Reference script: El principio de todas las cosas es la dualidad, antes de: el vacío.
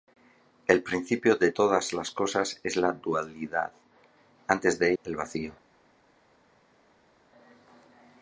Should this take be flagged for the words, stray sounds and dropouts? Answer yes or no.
no